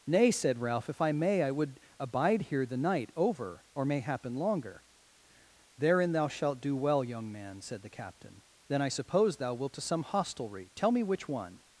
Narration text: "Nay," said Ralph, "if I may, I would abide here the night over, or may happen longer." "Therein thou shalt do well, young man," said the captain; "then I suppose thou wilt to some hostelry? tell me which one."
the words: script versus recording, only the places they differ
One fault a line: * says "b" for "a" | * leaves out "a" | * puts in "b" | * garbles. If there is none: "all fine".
all fine